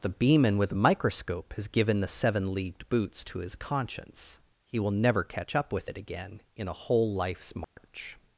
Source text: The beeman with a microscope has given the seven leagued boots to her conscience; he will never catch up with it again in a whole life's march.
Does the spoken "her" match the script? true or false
false